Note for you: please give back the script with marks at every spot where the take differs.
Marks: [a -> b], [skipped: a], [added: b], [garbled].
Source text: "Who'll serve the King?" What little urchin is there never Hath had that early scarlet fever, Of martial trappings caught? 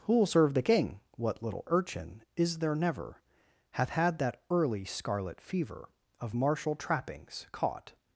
"Who'll serve the King?" What little urchin is there never Hath had that early scarlet fever, Of martial trappings caught?